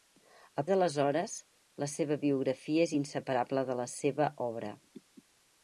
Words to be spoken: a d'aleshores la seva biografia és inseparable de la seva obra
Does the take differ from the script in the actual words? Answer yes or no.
no